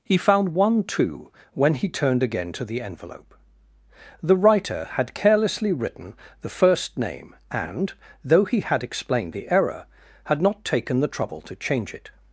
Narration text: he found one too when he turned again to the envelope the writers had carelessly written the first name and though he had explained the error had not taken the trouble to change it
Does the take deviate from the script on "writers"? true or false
true